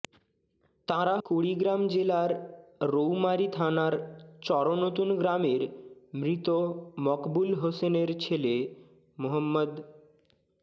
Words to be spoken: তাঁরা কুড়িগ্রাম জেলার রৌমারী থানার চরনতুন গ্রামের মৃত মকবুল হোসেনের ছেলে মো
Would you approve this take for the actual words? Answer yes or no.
yes